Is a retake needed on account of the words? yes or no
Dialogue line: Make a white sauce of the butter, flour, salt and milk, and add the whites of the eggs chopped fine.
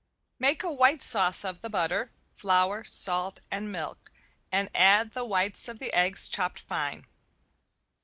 no